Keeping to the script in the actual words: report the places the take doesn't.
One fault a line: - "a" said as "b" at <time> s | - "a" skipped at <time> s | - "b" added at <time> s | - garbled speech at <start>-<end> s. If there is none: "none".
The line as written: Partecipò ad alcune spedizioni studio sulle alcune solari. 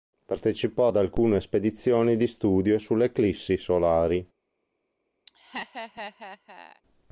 - "di" added at 2.2 s
- "alcune" said as "eclissi" at 3.1 s